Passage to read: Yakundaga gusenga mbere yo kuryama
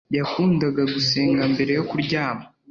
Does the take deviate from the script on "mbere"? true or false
false